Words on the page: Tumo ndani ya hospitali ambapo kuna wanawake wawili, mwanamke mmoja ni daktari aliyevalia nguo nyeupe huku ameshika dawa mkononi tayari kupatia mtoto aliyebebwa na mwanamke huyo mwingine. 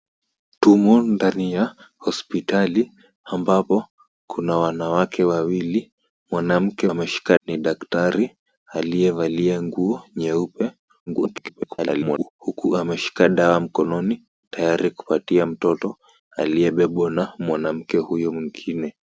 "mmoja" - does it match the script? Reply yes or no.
no